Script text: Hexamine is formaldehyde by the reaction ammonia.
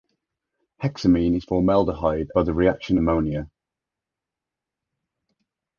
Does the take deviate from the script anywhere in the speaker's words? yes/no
no